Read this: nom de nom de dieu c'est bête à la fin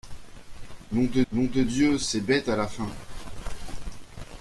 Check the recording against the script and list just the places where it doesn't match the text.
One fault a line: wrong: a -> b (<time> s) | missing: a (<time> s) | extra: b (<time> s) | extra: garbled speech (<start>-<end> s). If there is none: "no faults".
no faults